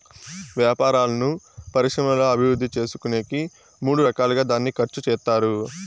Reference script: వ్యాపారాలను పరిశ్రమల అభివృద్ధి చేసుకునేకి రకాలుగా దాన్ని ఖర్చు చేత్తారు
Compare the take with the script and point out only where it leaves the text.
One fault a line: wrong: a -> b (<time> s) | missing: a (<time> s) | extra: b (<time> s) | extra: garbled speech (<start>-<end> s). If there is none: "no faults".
extra: మూడు (3.8 s)